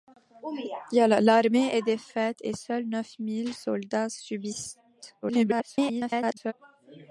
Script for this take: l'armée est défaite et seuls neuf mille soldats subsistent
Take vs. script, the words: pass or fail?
fail